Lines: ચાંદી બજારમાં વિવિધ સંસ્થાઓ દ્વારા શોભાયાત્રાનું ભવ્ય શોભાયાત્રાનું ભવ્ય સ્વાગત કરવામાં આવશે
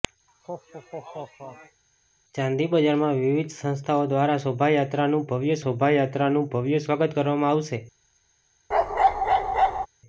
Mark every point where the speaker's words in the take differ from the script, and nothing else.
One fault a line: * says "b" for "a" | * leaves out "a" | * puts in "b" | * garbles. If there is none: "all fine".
all fine